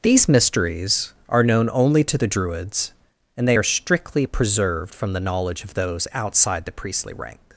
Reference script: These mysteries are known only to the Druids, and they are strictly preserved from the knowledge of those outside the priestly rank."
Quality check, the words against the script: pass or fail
pass